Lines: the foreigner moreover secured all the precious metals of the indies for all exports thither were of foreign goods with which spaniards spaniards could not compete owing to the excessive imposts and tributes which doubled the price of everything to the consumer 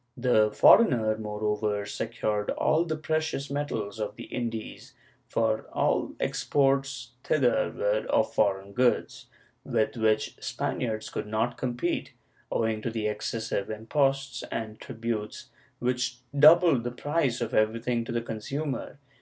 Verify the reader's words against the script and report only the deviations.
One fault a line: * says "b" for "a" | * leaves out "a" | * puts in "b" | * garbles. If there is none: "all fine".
* leaves out "spaniards"